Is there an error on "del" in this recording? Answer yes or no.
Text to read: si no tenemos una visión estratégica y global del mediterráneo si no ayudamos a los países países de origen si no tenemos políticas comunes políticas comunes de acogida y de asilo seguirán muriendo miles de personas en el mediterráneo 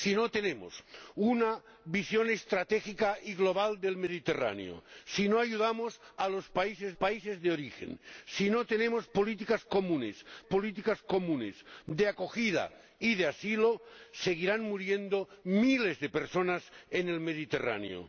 no